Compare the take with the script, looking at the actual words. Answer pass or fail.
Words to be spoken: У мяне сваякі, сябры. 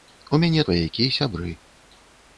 pass